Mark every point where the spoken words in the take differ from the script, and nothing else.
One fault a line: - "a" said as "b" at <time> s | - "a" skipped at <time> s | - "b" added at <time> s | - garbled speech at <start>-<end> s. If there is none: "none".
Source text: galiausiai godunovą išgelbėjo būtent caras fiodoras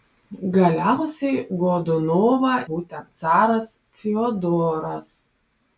- "išgelbėjo" skipped at 2.5 s